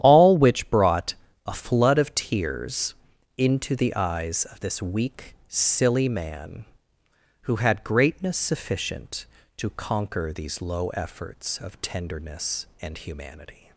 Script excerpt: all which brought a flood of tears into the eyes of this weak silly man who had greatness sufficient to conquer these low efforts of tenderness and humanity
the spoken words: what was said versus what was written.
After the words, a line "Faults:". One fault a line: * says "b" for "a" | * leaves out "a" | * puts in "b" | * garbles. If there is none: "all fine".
all which brought a flood of tears into the eyes of this weak silly man who had greatness sufficient to conquer these low efforts of tenderness and humanity
Faults:
all fine